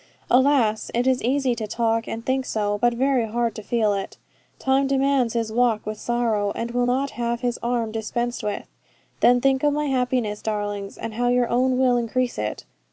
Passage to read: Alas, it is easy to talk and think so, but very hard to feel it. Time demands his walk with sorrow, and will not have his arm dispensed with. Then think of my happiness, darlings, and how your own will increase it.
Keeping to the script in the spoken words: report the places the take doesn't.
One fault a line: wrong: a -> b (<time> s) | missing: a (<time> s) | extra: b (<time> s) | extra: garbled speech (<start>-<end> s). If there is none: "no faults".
no faults